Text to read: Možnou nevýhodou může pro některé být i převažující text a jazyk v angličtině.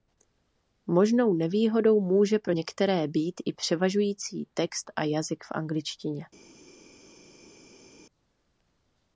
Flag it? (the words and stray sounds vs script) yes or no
no